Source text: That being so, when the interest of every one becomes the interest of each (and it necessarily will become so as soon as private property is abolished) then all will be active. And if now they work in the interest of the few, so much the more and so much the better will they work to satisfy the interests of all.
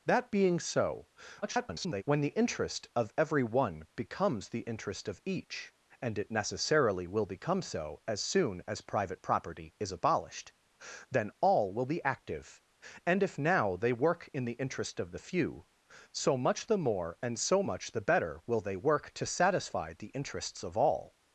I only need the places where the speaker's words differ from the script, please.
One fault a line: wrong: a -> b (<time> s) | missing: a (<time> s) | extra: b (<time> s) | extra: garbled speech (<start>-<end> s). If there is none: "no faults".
extra: garbled speech (1.4-2.0 s)